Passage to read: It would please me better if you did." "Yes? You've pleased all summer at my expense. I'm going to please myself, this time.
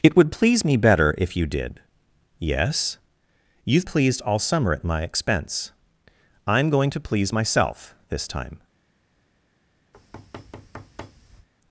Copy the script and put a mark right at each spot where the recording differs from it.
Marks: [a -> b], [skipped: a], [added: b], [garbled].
It would please me better if you did." "Yes? You've pleased all summer at my expense. I'm going to please myself, this time.